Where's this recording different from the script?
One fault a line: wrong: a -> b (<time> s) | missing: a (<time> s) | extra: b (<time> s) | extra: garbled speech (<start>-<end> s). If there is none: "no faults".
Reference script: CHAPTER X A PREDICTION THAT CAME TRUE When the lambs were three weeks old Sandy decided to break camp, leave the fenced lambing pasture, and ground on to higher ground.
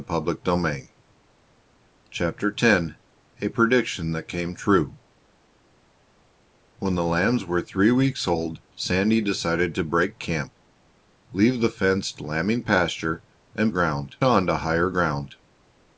no faults